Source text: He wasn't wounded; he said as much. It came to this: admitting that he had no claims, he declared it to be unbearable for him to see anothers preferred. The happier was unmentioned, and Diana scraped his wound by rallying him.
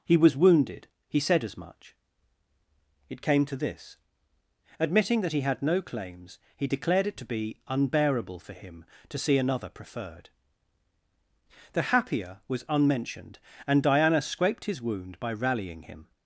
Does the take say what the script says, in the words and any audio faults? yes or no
no